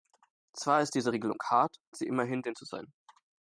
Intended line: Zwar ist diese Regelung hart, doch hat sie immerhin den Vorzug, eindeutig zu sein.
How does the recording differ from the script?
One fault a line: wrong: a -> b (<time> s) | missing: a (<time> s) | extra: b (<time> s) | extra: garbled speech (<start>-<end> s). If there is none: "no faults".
missing: doch hat (1.8 s)
missing: Vorzug eindeutig (2.6 s)